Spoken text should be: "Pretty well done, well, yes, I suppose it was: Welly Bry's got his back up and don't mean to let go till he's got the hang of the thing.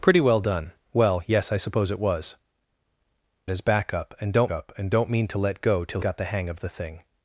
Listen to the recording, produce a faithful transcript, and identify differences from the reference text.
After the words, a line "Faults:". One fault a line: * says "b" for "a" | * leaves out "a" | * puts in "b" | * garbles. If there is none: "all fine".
"Pretty well done, well, yes, I suppose it was: His back up and don't up and don't mean to let go till got the hang of the thing.
Faults:
* says "His back up and don't" for "Welly Bry's got his back"
* leaves out "he's"